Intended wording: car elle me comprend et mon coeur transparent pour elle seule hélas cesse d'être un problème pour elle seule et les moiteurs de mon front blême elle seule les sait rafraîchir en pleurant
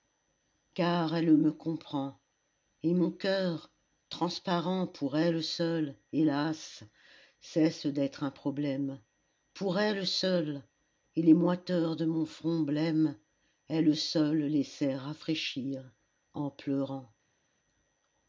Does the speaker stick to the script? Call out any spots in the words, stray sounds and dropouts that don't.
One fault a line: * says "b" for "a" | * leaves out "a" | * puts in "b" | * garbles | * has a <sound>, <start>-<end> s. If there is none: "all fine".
all fine